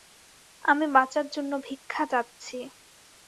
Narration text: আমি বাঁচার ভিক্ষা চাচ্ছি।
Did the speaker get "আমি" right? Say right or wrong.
right